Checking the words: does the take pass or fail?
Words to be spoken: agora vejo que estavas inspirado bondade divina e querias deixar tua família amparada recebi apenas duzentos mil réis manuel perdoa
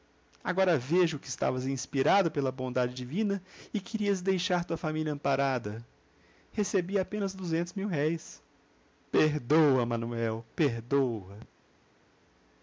fail